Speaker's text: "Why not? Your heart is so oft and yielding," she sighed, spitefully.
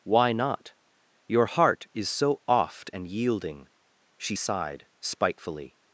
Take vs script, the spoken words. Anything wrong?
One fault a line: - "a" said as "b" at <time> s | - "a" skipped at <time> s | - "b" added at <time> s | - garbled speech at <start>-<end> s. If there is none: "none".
none